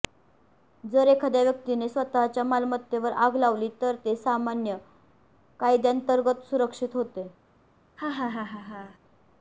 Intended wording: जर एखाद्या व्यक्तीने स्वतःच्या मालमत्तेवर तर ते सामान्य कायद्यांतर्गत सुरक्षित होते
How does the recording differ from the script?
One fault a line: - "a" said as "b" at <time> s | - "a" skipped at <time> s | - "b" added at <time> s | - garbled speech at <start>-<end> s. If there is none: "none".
- "आग लावली" added at 3.2 s